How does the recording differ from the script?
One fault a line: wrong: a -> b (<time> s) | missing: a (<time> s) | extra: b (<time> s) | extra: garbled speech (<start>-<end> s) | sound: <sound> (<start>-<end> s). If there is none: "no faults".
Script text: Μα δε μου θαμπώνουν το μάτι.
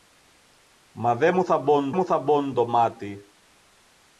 extra: μου θαμπώνουν (1.9 s)